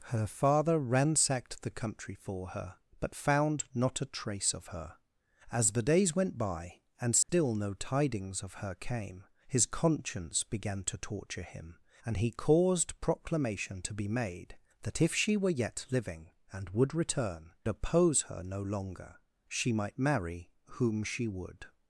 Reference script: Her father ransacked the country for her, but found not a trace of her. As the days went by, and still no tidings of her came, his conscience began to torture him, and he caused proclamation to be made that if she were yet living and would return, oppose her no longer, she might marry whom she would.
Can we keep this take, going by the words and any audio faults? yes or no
no